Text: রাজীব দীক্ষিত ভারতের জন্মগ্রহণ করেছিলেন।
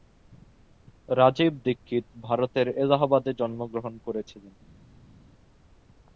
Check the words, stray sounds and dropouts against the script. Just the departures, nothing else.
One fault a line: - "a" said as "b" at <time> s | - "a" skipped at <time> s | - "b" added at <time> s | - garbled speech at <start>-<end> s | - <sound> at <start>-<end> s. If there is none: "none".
- "এলাহাবাদে" added at 2.8 s